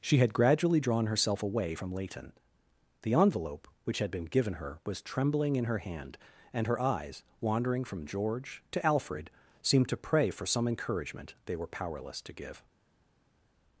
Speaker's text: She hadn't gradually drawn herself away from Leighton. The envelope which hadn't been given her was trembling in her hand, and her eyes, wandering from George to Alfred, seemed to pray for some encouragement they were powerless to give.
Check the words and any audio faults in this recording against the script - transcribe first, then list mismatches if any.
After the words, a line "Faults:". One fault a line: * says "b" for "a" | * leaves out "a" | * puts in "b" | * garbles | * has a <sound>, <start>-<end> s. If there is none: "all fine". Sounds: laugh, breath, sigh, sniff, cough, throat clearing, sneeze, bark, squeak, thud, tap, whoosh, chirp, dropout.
She had gradually drawn herself away from Leighton. The envelope which had been given her was trembling in her hand, and her eyes, wandering from George to Alfred, seemed to pray for some encouragement they were powerless to give.
Faults:
* says "had" for "hadn't"
* says "had" for "hadn't"